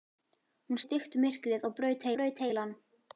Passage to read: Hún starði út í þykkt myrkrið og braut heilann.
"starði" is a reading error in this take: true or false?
true